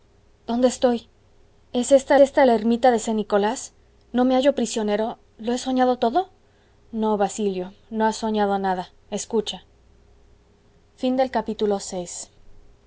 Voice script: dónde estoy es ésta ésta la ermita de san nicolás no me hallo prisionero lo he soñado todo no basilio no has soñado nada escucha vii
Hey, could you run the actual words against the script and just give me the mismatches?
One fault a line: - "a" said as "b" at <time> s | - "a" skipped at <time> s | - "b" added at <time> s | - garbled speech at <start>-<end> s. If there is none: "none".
none